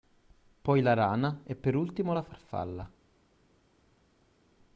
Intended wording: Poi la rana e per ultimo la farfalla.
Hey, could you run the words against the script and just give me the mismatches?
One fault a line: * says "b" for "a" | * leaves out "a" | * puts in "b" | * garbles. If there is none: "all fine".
all fine